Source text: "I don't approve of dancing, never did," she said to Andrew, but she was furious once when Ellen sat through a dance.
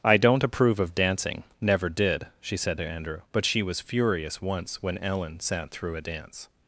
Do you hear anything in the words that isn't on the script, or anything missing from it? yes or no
no